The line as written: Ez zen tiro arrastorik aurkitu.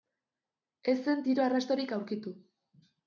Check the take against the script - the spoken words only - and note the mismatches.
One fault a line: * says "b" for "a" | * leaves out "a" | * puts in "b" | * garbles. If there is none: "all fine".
all fine